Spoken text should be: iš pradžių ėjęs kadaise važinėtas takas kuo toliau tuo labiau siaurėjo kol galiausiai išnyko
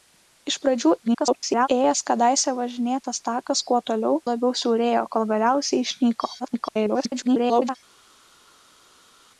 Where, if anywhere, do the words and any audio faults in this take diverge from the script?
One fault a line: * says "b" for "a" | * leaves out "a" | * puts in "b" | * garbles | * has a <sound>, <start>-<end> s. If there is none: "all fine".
* garbles
* leaves out "tuo"
* garbles